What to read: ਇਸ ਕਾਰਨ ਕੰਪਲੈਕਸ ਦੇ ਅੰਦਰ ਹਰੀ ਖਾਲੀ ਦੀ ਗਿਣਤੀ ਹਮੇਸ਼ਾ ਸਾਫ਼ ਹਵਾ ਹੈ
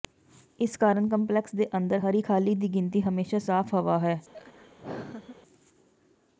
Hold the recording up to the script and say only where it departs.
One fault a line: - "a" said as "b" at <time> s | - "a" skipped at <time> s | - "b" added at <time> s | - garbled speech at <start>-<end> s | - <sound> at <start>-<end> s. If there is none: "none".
- laugh at 4.3-5.4 s